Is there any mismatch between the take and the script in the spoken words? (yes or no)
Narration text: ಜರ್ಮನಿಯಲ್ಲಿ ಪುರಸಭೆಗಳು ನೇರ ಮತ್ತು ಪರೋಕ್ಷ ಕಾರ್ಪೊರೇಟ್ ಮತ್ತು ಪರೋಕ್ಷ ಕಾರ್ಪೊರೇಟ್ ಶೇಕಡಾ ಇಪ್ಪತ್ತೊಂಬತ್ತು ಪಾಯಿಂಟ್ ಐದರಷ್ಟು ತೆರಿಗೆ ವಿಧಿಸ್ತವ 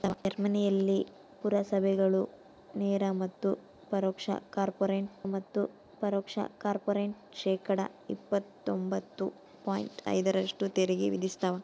no